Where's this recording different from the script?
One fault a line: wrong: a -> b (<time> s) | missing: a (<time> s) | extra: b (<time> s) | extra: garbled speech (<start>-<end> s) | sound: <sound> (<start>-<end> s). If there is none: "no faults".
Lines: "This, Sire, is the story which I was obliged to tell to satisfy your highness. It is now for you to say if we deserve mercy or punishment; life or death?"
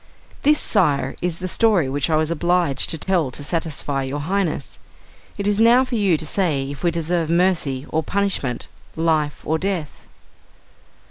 sound: dropout (3.0-3.1 s)